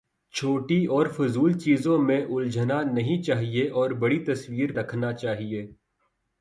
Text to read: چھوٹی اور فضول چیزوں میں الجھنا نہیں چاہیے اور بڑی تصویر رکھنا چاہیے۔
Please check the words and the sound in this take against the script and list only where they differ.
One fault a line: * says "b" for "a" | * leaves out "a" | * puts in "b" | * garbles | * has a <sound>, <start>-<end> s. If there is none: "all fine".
all fine